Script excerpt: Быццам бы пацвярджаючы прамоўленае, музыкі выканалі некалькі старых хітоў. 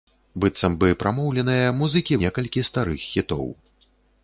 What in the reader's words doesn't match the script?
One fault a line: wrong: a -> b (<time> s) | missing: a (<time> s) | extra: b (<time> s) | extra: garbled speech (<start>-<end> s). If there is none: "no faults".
missing: пацвярджаючы (0.9 s)
missing: выканалі (2.2 s)